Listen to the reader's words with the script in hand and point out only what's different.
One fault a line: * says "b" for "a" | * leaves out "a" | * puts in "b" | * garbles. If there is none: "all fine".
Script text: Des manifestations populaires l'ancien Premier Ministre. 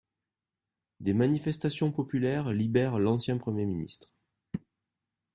* puts in "libèrent"